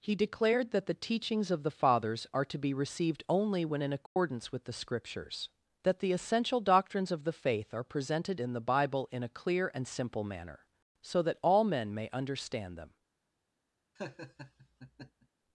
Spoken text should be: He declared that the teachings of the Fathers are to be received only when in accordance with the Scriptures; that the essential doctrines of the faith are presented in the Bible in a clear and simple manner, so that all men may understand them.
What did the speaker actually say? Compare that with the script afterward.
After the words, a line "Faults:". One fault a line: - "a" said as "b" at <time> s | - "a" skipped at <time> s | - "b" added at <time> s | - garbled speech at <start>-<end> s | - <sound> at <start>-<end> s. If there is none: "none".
He declared that the teachings of the Fathers are to be received only when in accordance with the Scriptures; that the essential doctrines of the faith are presented in the Bible in a clear and simple manner, so that all men may understand them.
Faults:
- dropout at 4.1-4.2 s
- laugh at 14.0-15.3 s